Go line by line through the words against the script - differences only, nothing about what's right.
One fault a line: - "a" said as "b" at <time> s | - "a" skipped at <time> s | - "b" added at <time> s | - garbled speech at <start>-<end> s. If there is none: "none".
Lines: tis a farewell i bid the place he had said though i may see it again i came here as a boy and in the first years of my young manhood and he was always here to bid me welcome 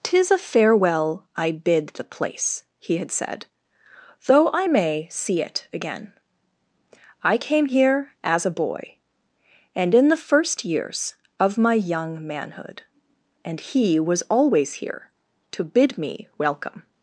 none